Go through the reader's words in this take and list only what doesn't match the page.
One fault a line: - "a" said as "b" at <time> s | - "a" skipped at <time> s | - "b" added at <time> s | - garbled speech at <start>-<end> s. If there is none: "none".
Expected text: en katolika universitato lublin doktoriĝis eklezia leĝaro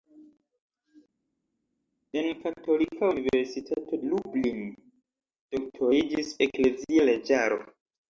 none